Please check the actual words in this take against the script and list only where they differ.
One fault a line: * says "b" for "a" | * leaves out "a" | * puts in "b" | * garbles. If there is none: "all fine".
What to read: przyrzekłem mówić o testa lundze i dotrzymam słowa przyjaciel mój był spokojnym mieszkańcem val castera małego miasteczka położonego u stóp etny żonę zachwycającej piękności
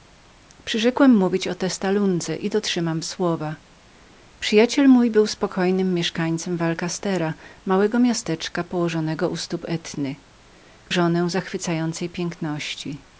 all fine